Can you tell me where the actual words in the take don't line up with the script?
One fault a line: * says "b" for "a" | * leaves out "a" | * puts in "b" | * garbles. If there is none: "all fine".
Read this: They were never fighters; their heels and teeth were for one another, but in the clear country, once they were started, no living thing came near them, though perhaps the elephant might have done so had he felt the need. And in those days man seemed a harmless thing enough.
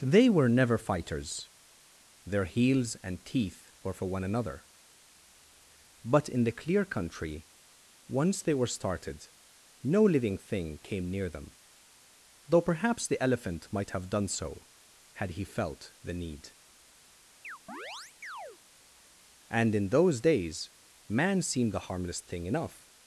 all fine